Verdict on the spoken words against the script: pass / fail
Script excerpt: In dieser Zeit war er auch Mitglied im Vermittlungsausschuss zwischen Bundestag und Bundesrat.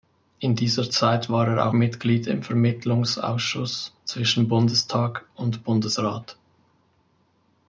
fail